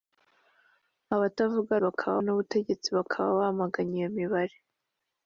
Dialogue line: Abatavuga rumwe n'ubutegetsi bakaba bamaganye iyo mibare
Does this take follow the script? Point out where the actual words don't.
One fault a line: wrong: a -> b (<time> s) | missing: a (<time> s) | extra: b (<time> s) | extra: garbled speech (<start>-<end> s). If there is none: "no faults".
wrong: rumwe -> bakaba (1.9 s)